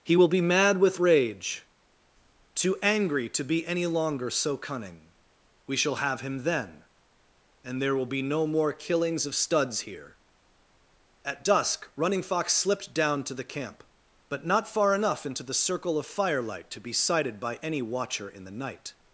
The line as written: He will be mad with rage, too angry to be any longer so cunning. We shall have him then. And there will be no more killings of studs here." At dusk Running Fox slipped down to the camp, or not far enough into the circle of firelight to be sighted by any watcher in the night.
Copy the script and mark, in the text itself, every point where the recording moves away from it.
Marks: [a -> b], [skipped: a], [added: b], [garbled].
He will be mad with rage, too angry to be any longer so cunning. We shall have him then. And there will be no more killings of studs here." At dusk Running Fox slipped down to the camp, [or -> but] not far enough into the circle of firelight to be sighted by any watcher in the night.